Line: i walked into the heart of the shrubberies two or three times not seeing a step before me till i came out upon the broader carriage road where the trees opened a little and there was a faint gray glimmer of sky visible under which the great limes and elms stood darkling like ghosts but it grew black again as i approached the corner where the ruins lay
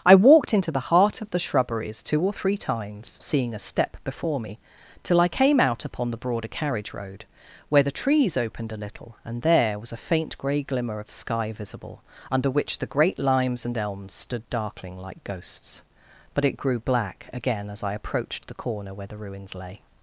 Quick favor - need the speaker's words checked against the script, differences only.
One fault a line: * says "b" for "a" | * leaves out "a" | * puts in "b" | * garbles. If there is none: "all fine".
* leaves out "not"